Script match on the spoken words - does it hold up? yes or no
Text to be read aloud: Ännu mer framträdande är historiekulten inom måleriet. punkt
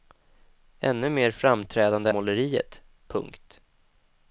no